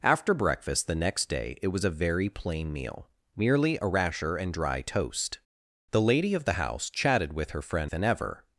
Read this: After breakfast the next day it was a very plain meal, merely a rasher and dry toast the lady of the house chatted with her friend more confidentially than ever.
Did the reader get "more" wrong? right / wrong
wrong